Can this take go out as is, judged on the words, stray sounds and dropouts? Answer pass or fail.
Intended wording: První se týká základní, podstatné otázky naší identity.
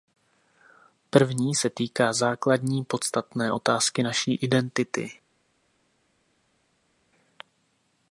pass